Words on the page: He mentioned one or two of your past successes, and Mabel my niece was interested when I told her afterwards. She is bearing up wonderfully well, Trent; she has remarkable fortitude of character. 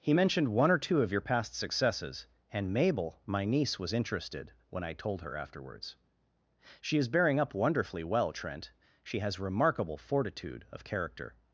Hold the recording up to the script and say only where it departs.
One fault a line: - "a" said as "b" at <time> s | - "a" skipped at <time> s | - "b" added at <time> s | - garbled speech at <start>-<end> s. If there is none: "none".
none